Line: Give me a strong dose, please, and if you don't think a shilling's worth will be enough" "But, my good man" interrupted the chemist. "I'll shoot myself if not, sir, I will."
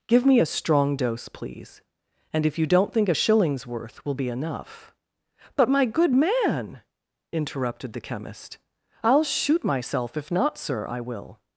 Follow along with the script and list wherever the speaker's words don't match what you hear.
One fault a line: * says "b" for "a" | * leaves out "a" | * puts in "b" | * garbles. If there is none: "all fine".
all fine